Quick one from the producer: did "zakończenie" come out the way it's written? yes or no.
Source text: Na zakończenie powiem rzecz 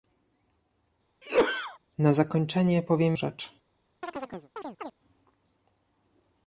yes